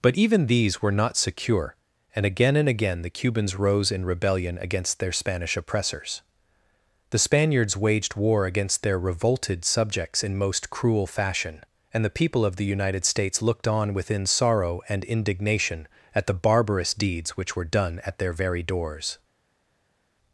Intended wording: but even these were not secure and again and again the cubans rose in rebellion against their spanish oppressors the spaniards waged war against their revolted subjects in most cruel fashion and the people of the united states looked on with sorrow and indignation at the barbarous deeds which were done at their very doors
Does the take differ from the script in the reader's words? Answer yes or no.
yes